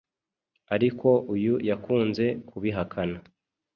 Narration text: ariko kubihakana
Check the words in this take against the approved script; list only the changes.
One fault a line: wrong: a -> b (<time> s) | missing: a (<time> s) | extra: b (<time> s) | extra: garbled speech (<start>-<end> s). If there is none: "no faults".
extra: uyu yakunze (1.3 s)